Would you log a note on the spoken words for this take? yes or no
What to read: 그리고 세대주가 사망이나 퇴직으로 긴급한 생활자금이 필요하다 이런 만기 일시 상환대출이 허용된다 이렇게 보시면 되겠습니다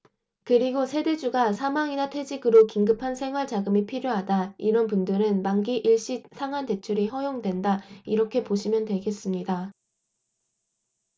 yes